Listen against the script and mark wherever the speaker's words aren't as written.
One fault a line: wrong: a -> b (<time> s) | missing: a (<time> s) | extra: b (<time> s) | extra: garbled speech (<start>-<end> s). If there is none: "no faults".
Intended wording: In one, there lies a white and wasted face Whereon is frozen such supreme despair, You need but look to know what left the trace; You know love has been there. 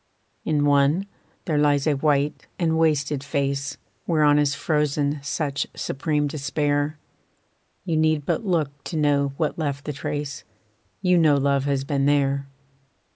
no faults